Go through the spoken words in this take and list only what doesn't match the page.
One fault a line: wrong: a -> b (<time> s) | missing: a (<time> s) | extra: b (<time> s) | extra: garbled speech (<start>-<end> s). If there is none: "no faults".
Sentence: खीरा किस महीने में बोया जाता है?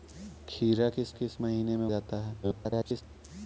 extra: किस (1.1 s)
missing: बोया (1.9 s)
extra: garbled speech (2.4-3.0 s)